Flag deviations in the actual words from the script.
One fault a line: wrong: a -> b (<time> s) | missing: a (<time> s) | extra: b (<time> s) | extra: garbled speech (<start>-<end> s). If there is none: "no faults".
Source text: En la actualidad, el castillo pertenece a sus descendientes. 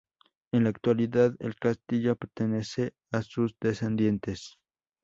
no faults